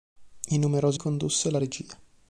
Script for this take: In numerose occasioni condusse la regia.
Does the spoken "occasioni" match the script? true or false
false